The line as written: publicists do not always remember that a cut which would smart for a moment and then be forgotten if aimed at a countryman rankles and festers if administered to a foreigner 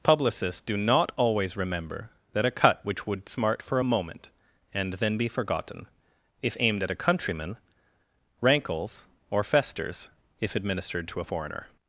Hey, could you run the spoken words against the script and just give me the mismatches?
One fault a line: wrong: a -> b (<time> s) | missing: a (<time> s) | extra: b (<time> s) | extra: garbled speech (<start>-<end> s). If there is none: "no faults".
wrong: and -> or (9.3 s)